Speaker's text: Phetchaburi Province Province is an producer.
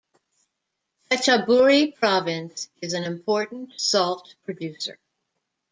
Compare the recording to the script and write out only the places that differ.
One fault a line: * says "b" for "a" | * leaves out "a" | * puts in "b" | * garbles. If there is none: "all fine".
* leaves out "Province"
* puts in "important salt"